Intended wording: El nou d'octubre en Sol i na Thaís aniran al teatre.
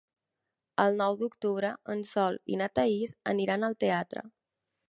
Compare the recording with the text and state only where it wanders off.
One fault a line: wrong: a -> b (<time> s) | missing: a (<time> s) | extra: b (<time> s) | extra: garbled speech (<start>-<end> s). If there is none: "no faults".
no faults